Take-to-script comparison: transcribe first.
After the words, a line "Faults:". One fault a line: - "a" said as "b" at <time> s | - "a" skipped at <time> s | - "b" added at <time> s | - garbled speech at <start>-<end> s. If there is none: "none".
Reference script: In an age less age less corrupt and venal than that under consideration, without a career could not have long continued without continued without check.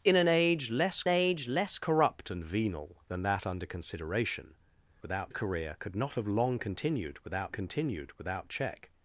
In an age less age less corrupt and venal than that under consideration, without a career could not have long continued without continued without check.
Faults:
none